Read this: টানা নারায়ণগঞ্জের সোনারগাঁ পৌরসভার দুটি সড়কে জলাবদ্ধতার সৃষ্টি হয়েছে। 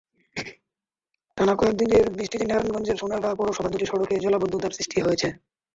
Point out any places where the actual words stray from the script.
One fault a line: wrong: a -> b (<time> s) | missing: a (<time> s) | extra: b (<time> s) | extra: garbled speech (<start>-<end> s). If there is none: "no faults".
extra: কয়েক দিনের বৃষ্টিতে (1.6 s)